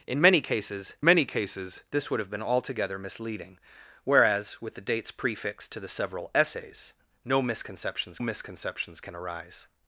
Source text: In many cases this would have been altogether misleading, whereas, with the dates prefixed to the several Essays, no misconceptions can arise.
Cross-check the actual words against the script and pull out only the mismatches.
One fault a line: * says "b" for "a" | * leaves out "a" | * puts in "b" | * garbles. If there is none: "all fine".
* puts in "many cases"
* puts in "misconceptions"